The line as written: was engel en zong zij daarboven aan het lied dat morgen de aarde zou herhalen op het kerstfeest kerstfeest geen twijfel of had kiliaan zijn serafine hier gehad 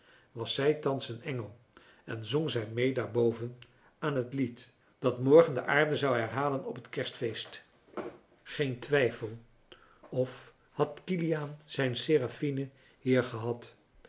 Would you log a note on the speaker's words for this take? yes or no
yes